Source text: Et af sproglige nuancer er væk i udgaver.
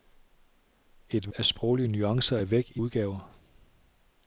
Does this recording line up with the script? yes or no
yes